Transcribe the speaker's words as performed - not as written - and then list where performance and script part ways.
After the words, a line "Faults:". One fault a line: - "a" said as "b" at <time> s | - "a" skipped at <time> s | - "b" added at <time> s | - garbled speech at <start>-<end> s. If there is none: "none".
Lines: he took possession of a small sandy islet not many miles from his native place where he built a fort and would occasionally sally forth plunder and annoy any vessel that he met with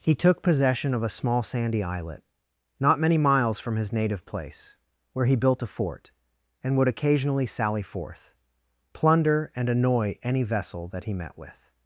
he took possession of a small sandy islet not many miles from his native place where he built a fort and would occasionally sally forth plunder and annoy any vessel that he met with
Faults:
none